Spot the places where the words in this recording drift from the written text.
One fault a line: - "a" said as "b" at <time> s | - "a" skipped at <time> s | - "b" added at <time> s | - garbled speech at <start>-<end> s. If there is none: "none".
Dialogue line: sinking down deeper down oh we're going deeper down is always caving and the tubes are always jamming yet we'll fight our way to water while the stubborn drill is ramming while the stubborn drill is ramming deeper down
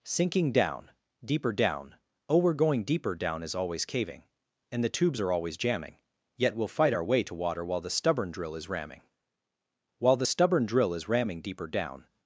none